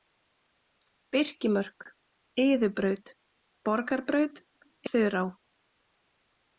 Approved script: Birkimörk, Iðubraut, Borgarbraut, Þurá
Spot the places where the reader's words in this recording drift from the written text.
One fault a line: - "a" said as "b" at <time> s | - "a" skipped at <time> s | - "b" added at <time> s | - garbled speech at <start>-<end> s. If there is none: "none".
none